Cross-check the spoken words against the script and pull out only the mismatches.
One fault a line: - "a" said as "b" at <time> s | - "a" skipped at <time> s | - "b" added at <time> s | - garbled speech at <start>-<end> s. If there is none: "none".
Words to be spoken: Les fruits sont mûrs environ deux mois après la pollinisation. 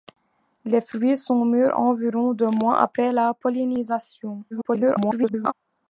- garbled speech at 4.5-5.5 s